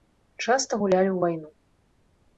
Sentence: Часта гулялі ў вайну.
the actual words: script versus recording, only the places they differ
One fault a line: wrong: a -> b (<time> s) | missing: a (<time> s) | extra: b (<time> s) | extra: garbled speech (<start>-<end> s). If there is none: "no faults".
no faults